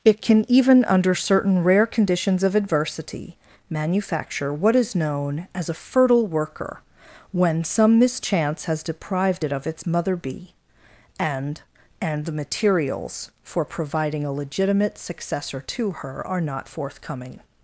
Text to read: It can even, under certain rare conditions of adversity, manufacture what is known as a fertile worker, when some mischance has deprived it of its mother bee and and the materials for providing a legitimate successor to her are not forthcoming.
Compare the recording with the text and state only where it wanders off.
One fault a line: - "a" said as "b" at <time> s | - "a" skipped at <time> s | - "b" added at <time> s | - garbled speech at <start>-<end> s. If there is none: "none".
none